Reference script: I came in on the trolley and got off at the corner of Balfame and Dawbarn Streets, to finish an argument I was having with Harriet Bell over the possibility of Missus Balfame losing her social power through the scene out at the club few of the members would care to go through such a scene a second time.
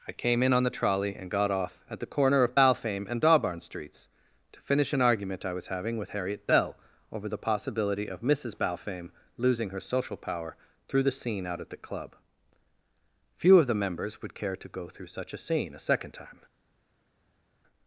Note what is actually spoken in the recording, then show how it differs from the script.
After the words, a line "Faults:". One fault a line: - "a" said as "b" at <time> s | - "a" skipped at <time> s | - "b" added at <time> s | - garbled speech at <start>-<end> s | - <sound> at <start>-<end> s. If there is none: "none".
I came in on the trolley and got off at the corner of Balfame and Dawbarn Streets, to finish an argument I was having with Harriet Bell over the possibility of Missus Balfame losing her social power through the scene out at the club few of the members would care to go through such a scene a second time.
Faults:
none